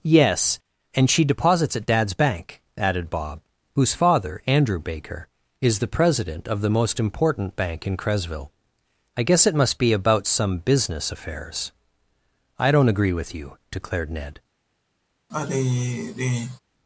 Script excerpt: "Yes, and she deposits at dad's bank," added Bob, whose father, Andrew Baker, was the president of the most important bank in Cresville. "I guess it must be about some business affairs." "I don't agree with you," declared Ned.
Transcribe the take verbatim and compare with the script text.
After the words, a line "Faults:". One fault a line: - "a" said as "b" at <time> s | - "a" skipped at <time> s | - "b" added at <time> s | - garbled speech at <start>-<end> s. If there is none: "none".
"Yes, and she deposits at dad's bank," added Bob, whose father, Andrew Baker, is the president of the most important bank in Cresville. "I guess it must be about some business affairs." "I don't agree with you," declared Ned.
Faults:
- "was" said as "is" at 5.6 s